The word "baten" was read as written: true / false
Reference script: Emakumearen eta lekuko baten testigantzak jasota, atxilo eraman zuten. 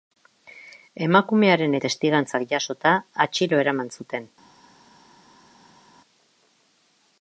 false